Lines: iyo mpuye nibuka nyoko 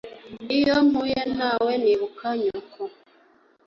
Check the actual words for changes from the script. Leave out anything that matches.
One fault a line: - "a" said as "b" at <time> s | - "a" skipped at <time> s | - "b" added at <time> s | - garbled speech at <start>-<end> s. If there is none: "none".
- "nawe" added at 1.4 s